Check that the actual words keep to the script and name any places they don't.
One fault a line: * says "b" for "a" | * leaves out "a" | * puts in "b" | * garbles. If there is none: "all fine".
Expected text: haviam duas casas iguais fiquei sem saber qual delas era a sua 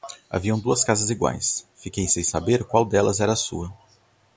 all fine